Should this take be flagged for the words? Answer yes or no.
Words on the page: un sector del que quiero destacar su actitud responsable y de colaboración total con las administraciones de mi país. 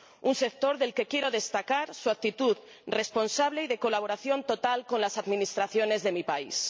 no